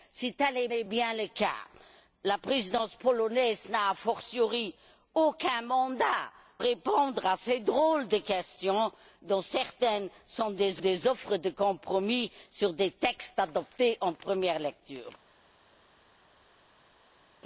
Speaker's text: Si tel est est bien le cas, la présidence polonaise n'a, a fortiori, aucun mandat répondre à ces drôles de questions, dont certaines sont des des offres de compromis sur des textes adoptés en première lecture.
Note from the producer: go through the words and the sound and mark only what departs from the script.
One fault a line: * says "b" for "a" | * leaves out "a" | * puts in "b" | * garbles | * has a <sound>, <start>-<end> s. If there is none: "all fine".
all fine